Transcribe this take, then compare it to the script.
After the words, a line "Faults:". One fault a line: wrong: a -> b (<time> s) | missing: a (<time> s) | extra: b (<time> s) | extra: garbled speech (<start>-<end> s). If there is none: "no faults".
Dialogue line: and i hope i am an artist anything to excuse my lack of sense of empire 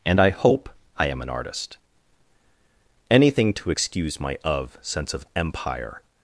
and i hope i am an artist anything to excuse my of sense of empire
Faults:
missing: lack (4.4 s)